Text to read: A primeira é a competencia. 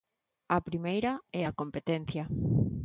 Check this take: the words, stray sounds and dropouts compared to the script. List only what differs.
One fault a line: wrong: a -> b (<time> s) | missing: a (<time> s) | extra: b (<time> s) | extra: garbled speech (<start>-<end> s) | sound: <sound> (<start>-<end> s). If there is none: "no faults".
no faults